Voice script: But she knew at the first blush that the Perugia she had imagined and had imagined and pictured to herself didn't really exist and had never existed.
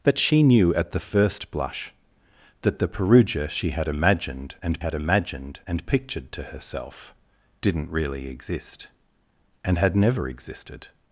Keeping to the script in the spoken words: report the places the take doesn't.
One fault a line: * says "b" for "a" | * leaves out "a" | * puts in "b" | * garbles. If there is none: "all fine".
all fine